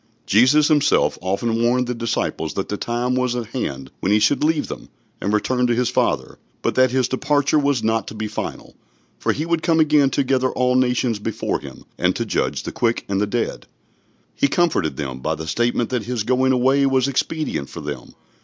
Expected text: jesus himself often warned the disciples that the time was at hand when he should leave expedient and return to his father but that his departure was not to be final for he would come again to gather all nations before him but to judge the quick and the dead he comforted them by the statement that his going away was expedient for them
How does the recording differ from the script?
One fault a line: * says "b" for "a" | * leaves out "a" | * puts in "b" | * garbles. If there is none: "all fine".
* says "them" for "expedient"
* says "and" for "but"